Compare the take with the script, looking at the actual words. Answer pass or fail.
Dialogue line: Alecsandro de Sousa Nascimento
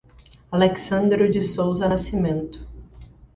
pass